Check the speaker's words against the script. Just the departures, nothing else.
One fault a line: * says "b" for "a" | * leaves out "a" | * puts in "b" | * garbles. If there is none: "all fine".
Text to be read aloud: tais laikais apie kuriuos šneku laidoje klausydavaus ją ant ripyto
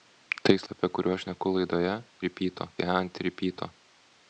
* leaves out "laikais"
* says "ripyto" for "klausydavaus"